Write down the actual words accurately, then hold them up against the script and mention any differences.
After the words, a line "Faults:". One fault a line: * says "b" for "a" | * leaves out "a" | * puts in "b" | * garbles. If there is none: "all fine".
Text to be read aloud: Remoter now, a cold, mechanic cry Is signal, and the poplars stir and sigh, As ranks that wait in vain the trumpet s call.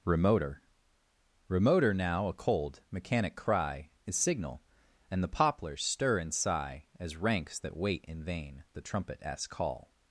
Remoter remoter now, a cold, mechanic cry Is signal, and the poplars stir and sigh, As ranks that wait in vain the trumpet s call.
Faults:
* puts in "remoter"